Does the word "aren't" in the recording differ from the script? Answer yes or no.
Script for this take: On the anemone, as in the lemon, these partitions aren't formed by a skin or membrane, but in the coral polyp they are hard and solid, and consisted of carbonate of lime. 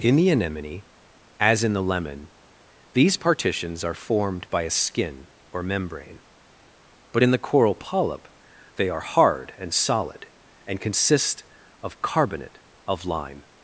yes